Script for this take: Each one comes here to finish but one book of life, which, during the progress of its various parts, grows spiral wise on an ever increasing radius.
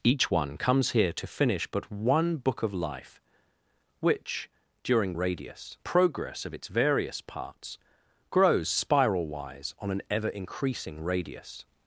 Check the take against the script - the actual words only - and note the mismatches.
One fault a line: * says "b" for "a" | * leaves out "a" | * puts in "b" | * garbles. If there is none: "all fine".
* says "radius" for "the"